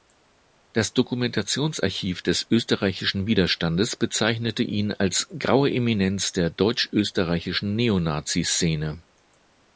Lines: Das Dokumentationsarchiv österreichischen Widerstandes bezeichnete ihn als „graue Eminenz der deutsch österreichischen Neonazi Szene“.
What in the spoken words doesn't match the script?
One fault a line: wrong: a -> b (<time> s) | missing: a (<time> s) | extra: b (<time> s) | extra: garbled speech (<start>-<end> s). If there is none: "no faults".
extra: des (2.2 s)